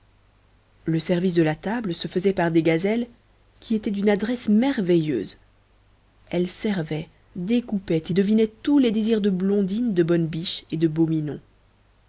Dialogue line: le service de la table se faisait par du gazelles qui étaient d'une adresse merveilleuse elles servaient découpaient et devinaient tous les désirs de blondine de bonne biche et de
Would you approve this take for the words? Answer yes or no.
no